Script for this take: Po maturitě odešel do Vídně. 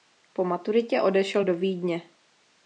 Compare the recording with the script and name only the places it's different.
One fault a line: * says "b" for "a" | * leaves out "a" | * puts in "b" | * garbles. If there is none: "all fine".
all fine